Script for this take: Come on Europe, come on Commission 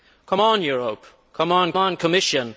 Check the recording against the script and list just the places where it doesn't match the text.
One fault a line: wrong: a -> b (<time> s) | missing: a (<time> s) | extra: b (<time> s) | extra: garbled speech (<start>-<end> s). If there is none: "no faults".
extra: on (1.8 s)